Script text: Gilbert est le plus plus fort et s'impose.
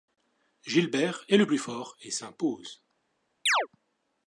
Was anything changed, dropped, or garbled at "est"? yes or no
no